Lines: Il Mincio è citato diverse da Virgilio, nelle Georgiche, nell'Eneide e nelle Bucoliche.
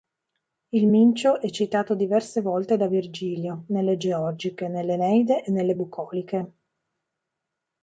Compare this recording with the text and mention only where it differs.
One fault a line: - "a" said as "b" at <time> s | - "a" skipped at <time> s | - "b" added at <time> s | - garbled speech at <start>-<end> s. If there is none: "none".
- "volte" added at 2.4 s